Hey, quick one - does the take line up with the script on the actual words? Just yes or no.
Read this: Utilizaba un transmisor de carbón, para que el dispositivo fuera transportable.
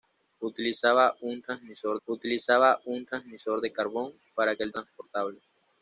no